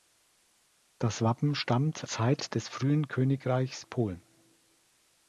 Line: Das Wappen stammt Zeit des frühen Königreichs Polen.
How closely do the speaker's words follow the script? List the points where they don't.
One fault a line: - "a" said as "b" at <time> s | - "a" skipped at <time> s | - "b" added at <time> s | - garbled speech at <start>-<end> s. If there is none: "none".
none